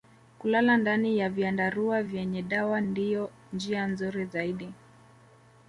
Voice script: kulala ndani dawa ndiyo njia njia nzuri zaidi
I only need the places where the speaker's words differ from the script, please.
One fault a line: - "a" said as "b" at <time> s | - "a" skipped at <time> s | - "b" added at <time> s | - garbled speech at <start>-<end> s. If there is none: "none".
- "ya vyandarua vyenye" added at 1.2 s
- "njia" skipped at 3.9 s